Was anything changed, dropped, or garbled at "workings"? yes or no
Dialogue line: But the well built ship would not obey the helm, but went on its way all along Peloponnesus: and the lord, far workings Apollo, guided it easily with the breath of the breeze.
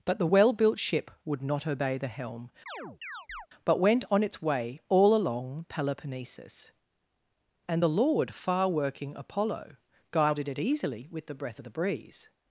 yes